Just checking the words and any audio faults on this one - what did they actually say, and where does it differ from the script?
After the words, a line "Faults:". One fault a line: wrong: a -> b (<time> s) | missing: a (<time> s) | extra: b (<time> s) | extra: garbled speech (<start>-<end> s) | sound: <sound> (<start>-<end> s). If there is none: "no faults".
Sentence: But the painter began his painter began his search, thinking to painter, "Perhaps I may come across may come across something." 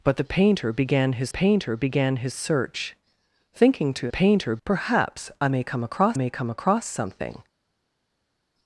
But the painter began his painter began his search, thinking to painter, "Perhaps I may come across may come across something."
Faults:
no faults